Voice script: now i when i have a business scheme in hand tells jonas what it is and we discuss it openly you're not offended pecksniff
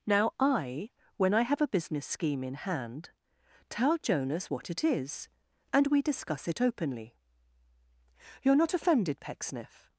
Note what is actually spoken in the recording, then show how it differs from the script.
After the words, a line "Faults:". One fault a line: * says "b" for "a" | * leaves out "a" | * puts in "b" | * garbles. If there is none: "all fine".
now i when i have a business scheme in hand tell jonas what it is and we discuss it openly you're not offended pecksniff
Faults:
* says "tell" for "tells"